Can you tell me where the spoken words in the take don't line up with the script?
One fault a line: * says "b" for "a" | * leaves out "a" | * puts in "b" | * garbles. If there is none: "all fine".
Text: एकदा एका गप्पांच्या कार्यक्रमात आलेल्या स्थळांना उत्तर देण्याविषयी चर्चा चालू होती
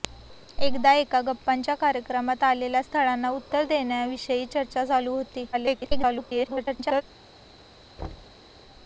* garbles